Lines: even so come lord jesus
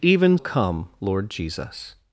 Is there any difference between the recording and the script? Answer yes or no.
yes